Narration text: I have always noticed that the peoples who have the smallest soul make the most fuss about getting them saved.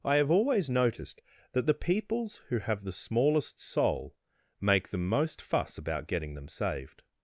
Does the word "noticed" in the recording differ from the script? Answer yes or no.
no